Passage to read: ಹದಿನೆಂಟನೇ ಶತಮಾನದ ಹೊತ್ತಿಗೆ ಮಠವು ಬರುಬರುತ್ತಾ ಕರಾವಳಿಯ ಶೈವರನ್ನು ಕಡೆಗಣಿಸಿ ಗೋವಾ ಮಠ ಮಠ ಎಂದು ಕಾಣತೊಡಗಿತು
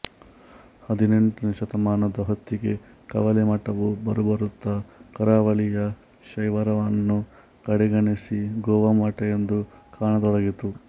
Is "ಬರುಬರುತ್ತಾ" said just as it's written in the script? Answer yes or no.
yes